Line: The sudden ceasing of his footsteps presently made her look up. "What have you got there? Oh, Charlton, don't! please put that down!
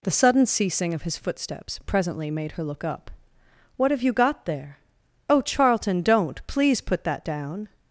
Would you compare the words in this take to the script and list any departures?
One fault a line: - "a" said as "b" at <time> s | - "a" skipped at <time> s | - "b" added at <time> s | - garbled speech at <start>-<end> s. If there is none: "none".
none